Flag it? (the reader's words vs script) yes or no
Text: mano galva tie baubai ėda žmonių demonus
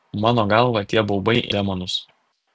yes